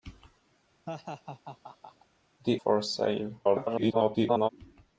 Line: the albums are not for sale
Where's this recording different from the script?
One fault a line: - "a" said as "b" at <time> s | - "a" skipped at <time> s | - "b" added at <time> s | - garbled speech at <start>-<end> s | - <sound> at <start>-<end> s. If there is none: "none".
- laugh at 0.9-2.1 s
- "albums are not" skipped at 2.6 s
- garbled speech at 3.4-4.5 s